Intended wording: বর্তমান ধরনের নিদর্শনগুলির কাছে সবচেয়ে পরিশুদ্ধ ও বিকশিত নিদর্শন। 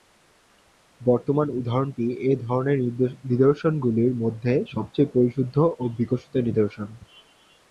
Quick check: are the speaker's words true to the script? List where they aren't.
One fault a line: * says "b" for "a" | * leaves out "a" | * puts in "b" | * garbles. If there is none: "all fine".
* puts in "উদাহরণটি এ"
* says "মধ্যে" for "কাছে"